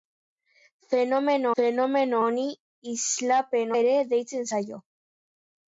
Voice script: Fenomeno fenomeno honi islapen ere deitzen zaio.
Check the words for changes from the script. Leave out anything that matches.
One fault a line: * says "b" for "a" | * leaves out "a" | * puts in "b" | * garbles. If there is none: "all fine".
all fine